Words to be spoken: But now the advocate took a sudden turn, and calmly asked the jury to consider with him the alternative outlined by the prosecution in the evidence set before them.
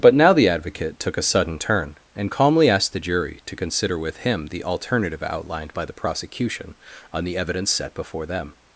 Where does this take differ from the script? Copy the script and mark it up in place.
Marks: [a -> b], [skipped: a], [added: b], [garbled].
But now the advocate took a sudden turn, and calmly asked the jury to consider with him the alternative outlined by the prosecution [in -> on] the evidence set before them.